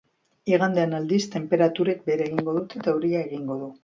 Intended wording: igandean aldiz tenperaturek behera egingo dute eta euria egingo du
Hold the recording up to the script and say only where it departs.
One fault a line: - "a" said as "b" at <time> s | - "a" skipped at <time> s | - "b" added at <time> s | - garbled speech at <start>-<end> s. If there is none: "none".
none